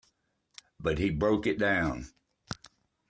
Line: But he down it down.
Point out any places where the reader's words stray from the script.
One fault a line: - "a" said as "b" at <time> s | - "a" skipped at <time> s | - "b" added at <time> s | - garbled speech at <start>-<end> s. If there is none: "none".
- "down" said as "broke" at 1.1 s